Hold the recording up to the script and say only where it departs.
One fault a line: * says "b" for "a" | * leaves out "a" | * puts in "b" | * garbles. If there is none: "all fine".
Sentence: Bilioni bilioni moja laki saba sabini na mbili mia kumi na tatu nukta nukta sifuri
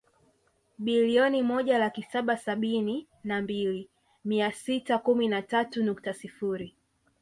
* leaves out "bilioni"
* puts in "sita"
* leaves out "nukta"